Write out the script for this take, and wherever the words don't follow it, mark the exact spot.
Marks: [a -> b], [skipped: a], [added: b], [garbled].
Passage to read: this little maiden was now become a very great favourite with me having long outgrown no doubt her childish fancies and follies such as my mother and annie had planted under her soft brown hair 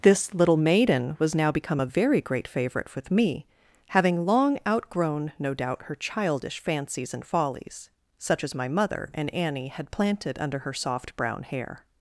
this little maiden was now become a very great favourite with me having long outgrown no doubt her childish fancies and follies such as my mother and annie had planted under her soft brown hair